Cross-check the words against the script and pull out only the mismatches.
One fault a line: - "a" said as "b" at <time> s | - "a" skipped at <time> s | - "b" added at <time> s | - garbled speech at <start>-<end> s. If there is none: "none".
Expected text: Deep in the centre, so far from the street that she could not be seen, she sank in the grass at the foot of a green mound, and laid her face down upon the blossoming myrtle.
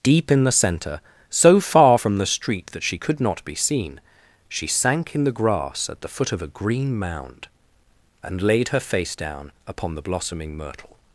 none